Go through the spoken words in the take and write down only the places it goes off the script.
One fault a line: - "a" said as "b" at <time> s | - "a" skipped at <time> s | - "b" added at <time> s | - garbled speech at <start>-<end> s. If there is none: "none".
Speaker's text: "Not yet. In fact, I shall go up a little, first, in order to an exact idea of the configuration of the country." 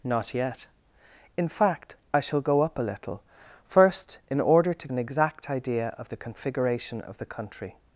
none